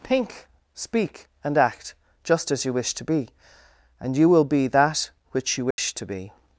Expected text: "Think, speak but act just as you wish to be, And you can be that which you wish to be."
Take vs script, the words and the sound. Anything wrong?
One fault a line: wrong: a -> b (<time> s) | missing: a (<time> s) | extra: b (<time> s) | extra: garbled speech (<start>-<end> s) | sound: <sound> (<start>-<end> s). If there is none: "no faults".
wrong: but -> and (1.4 s)
wrong: can -> will (4.3 s)
sound: dropout (5.7-5.8 s)